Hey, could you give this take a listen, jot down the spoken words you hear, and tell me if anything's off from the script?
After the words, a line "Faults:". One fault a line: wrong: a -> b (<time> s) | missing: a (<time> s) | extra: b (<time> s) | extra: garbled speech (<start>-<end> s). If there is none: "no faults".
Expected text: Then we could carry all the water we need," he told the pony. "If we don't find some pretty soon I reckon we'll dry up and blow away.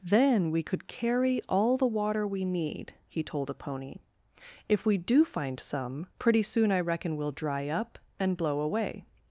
Then we could carry all the water we need," he told a pony. "If we do find some pretty soon I reckon we'll dry up and blow away.
Faults:
wrong: the -> a (3.5 s)
wrong: don't -> do (5.0 s)